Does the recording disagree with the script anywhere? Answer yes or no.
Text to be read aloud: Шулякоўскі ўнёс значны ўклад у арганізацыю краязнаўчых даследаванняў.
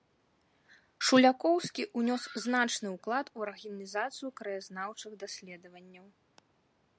no